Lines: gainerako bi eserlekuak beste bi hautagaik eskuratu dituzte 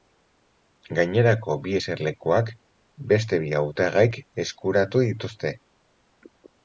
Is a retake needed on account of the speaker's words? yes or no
no